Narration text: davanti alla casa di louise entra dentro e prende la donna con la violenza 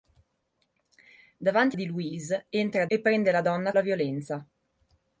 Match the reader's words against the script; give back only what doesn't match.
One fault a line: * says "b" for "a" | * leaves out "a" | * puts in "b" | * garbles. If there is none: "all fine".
* leaves out "alla casa"
* leaves out "dentro"
* leaves out "con"